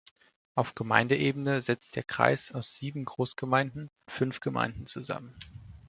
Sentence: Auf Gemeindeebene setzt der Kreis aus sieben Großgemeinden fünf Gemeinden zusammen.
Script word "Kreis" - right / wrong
right